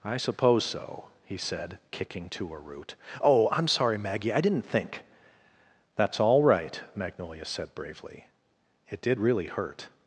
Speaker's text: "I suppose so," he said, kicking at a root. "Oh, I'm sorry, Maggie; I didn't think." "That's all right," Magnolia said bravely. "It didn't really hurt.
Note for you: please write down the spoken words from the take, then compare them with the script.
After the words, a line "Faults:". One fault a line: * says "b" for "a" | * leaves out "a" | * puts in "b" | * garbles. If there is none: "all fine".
"I suppose so," he said, kicking to a root. "Oh, I'm sorry, Maggie; I didn't think." "That's all right," Magnolia said bravely. "It did really hurt.
Faults:
* says "to" for "at"
* says "did" for "didn't"